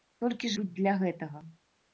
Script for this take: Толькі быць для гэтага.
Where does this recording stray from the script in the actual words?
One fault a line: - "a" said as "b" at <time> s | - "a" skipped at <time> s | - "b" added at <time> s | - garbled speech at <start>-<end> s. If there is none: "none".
none